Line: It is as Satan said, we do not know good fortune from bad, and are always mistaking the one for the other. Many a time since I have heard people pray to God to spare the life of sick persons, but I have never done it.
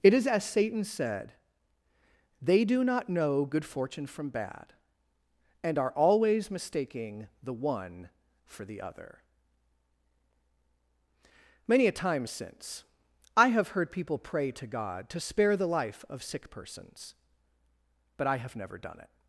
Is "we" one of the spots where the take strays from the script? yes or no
yes